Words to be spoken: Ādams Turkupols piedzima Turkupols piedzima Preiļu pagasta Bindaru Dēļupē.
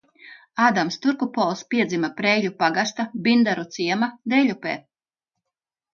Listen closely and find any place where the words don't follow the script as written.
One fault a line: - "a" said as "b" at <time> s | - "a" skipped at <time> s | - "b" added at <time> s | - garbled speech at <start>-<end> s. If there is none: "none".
- "Turkupols piedzima" skipped at 2.1 s
- "ciema" added at 3.8 s